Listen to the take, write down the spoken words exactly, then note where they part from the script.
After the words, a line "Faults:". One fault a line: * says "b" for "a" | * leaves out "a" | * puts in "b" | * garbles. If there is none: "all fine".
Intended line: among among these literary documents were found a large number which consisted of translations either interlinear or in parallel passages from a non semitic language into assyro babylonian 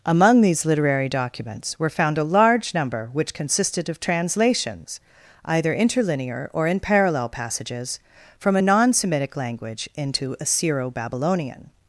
among these literary documents were found a large number which consisted of translations either interlinear or in parallel passages from a non semitic language into assyro babylonian
Faults:
* leaves out "among"